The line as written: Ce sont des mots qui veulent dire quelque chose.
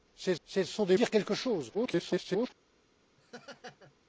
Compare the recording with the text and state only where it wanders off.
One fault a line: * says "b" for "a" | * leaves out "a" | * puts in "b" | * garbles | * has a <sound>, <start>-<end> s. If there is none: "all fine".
* puts in "ce"
* leaves out "mots qui veulent"
* garbles
* has a laugh, 3.2-3.9 s